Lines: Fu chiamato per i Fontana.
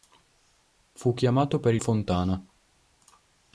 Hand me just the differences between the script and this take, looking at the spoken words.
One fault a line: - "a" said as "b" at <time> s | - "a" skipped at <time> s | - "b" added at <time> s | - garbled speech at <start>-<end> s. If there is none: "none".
none